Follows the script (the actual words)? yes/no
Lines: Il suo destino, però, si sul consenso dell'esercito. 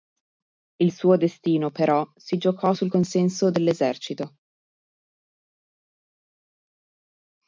no